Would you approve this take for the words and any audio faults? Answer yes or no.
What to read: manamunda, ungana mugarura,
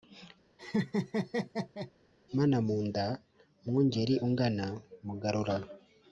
no